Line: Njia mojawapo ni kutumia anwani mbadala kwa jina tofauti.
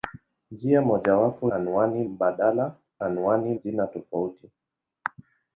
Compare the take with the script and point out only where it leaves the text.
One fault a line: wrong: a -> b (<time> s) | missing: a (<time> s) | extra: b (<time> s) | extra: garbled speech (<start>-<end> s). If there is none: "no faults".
missing: ni kutumia (1.5 s)
wrong: kwa -> anwani (3.0 s)